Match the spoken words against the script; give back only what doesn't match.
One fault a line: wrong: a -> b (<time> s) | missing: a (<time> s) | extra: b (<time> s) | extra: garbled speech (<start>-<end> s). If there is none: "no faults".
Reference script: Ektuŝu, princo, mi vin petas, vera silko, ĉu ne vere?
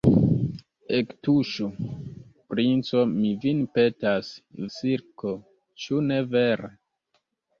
missing: vera (4.3 s)